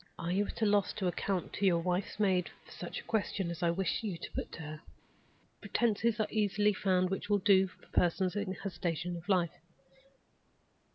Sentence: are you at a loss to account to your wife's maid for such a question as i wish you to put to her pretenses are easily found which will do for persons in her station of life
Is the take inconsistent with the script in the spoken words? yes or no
no